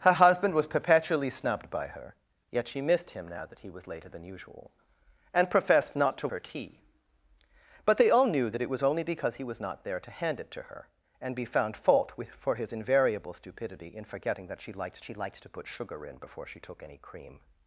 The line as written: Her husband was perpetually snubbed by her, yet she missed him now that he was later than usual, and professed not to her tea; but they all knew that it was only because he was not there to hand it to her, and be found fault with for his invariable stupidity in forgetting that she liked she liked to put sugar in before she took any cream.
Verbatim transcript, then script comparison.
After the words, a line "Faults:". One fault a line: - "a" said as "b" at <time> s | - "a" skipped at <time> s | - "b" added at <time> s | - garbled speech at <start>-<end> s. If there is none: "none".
Her husband was perpetually snubbed by her, yet she missed him now that he was later than usual, and professed not to her tea; but they all knew that it was only because he was not there to hand it to her, and be found fault with for his invariable stupidity in forgetting that she liked she liked to put sugar in before she took any cream.
Faults:
none